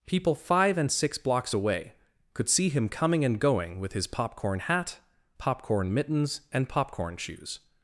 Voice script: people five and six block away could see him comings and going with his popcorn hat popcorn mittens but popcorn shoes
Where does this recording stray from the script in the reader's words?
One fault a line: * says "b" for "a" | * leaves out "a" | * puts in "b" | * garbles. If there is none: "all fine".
* says "blocks" for "block"
* says "coming" for "comings"
* says "and" for "but"